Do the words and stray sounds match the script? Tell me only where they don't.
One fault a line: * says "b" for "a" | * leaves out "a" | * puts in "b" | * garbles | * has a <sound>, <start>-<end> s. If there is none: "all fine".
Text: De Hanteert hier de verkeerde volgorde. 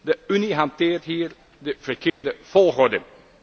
* puts in "Unie"
* has a dropout, 2.1-2.2 s